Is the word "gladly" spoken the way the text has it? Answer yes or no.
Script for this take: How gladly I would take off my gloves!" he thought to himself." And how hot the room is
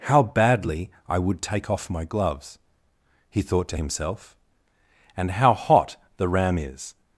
no